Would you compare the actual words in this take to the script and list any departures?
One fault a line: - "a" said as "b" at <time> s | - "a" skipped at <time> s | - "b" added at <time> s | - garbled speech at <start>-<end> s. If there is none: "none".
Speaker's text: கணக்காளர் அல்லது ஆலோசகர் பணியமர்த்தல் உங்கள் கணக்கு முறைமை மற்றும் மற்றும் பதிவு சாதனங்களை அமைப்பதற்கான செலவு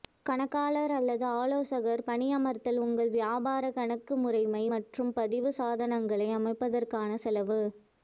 - "வியாபார" added at 3.2 s
- "மற்றும்" skipped at 5.1 s